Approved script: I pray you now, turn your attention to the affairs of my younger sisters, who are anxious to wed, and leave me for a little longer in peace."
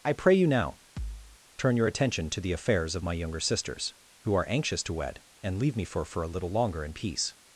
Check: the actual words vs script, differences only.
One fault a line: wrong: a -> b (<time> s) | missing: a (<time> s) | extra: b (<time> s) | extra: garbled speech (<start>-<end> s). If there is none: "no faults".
extra: for (6.0 s)